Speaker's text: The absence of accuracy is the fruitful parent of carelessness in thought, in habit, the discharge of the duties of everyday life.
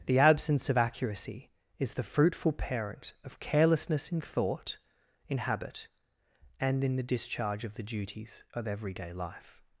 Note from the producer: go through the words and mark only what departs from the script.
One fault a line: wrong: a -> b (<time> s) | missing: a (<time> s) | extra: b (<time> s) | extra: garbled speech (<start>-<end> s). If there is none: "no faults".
extra: and in (6.6 s)